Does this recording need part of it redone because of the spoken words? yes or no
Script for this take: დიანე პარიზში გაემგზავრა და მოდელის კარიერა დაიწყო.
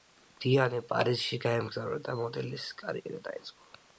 no